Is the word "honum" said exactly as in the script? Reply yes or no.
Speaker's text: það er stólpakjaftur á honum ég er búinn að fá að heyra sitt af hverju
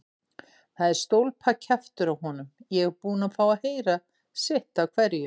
yes